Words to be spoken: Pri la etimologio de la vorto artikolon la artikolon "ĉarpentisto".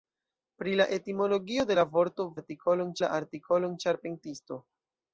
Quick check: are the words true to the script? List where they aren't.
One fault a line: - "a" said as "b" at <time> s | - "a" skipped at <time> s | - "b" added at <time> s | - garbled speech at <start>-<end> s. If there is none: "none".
none